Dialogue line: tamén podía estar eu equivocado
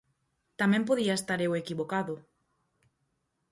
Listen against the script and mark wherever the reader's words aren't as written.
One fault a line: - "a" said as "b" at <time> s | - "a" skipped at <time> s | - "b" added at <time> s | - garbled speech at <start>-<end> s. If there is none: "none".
none